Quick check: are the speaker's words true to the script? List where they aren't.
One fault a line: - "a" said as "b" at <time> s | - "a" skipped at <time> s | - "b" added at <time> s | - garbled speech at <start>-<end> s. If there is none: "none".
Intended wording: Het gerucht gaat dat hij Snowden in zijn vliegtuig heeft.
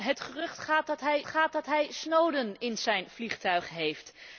- "gaat dat hij" added at 1.3 s